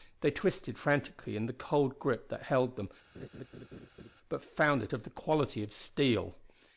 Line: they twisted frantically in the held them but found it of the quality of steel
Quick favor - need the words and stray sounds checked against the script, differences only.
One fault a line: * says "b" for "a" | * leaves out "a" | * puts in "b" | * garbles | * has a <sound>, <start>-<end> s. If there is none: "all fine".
* puts in "cold grip that"
* has a laugh, 3.1-4.1 s